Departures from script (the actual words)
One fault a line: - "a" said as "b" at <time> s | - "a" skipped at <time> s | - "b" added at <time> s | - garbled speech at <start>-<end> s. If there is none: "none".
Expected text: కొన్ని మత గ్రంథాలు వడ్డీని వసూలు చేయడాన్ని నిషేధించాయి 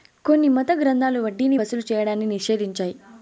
none